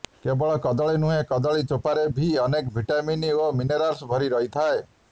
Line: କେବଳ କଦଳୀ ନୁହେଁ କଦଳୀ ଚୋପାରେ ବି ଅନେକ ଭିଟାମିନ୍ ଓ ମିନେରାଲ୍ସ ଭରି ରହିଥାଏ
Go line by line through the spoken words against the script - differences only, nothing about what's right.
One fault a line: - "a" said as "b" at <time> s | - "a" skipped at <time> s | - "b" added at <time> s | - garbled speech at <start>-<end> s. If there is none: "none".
none